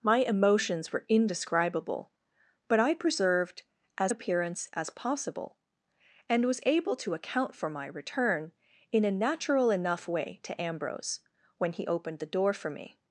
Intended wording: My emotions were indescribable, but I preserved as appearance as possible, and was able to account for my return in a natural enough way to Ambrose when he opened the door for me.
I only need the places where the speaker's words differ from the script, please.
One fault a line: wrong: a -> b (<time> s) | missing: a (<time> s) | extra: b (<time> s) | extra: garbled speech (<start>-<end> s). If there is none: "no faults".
no faults